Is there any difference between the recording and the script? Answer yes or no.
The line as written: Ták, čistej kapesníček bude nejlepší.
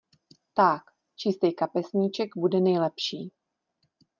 no